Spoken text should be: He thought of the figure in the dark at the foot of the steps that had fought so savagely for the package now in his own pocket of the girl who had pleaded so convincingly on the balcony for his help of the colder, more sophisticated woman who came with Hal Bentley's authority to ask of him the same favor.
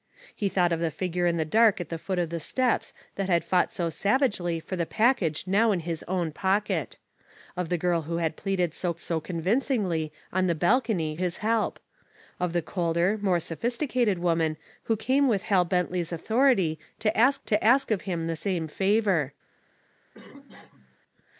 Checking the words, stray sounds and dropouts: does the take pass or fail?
fail